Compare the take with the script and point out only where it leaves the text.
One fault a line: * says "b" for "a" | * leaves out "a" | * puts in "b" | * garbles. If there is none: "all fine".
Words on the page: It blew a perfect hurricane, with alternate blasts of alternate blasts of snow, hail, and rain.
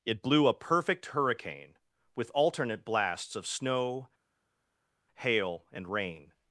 * leaves out "alternate blasts of"